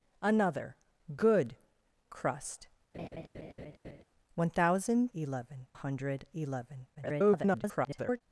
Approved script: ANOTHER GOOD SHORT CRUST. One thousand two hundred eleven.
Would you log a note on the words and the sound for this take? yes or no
yes